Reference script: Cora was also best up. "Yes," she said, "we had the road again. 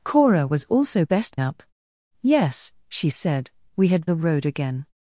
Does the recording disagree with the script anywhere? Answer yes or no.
no